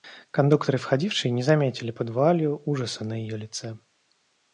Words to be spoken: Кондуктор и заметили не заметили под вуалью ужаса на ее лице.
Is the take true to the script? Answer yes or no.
no